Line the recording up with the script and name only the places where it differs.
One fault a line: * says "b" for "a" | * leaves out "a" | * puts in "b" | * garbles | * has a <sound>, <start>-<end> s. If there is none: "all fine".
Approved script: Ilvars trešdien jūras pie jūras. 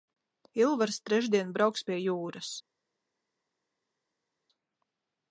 * says "brauks" for "jūras"